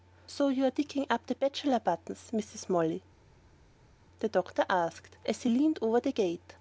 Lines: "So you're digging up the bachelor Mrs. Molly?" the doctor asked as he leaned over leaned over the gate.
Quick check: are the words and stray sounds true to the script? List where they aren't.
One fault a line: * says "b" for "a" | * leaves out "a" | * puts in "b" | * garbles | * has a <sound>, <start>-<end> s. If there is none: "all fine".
* puts in "buttons"
* leaves out "leaned over"